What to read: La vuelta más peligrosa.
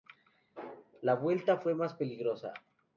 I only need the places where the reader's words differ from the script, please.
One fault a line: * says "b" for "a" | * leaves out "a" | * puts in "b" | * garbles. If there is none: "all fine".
* puts in "fue"